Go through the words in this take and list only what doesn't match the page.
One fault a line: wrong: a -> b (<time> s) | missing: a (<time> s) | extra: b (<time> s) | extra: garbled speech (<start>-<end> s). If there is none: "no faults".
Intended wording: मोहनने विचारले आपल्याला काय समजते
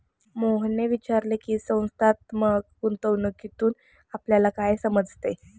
extra: की संस्थात्मक गुंतवणूकीतून (1.4 s)